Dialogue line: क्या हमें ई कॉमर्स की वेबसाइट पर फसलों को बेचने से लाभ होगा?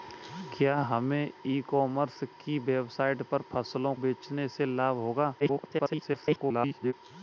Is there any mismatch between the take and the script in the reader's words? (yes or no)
yes